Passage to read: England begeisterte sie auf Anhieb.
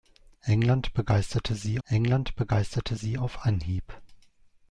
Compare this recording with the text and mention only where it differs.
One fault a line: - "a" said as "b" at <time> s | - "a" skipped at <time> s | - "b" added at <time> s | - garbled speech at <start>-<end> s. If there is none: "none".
- "england begeisterte sie" added at 1.8 s